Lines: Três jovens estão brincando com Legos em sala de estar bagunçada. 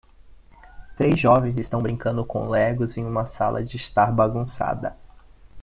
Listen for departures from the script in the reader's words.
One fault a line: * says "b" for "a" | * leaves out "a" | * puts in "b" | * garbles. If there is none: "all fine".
* puts in "uma"